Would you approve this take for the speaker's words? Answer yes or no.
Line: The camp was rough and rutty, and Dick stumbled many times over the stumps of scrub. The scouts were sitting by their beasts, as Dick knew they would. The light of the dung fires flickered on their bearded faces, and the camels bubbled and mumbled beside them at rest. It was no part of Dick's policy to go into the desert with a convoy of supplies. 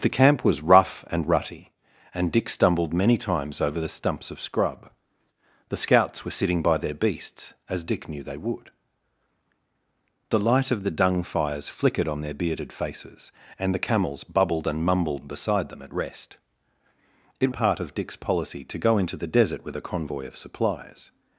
no